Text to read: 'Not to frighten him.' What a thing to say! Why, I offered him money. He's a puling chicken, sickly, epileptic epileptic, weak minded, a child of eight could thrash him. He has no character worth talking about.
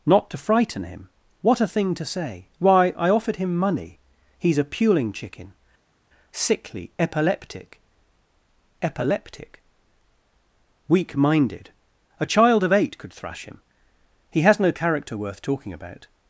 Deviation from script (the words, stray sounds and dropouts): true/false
false